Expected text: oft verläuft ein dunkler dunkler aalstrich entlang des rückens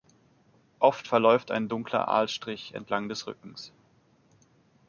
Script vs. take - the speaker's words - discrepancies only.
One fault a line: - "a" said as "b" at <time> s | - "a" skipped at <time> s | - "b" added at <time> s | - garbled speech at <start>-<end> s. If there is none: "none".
- "dunkler" skipped at 2.1 s